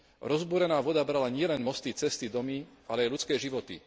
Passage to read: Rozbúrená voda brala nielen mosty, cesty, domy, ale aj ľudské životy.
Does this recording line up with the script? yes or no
yes